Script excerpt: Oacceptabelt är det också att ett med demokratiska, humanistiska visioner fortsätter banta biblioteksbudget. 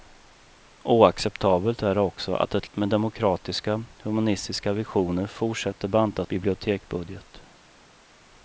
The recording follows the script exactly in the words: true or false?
true